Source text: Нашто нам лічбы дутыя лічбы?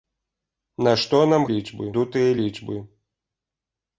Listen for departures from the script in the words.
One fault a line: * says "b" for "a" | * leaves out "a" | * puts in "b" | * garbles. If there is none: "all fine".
all fine